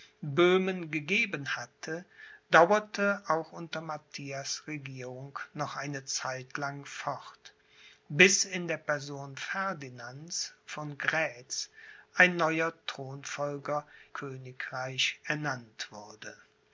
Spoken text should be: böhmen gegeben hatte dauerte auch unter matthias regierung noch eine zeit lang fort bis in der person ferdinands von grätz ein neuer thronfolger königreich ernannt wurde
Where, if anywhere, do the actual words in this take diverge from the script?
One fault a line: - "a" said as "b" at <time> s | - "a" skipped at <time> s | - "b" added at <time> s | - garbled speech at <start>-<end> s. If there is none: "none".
none